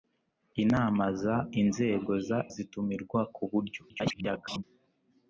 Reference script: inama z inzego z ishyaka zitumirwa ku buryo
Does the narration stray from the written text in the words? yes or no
yes